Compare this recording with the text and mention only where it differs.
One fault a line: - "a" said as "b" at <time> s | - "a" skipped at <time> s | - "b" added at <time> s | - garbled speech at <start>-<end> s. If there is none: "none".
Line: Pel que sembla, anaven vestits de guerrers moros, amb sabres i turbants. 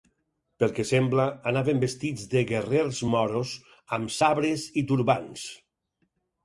none